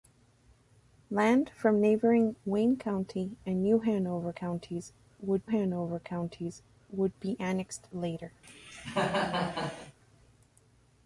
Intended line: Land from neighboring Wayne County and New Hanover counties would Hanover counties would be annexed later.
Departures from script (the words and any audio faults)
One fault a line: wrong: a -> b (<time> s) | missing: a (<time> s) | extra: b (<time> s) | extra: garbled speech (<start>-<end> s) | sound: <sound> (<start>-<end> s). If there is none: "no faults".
sound: cough (8.4-10.0 s)